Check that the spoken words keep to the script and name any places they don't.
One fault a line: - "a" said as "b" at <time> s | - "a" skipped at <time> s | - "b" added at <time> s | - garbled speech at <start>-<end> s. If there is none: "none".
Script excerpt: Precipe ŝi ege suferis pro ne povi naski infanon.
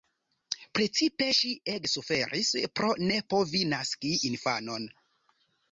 none